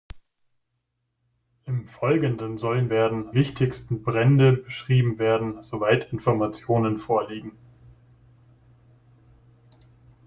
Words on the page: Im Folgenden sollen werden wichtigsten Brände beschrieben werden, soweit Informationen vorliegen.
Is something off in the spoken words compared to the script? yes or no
no